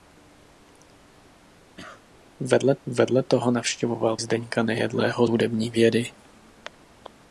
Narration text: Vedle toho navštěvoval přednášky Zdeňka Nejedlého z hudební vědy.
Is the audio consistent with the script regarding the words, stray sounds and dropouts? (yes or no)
no